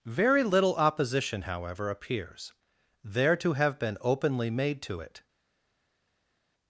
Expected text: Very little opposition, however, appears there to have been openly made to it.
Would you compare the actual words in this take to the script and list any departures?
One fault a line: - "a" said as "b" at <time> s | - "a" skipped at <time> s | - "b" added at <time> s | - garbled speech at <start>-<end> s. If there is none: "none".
none